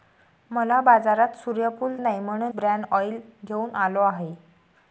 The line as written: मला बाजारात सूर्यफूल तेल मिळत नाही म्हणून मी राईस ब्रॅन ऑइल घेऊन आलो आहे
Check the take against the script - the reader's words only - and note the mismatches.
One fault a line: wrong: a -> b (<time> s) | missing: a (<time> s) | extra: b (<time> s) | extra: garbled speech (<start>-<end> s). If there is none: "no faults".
missing: तेल मिळत (1.9 s)
missing: मी राईस (2.5 s)